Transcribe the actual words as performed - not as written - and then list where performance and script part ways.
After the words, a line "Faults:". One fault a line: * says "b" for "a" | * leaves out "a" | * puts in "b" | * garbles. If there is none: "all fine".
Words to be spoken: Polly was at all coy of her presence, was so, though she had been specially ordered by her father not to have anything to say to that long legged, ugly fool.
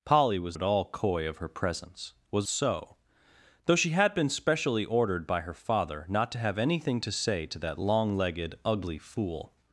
Polly was at all coy of her presence, was so, though she had been specially ordered by her father not to have anything to say to that long legged, ugly fool.
Faults:
all fine